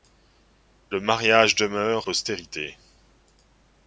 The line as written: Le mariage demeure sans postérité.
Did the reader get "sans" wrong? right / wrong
wrong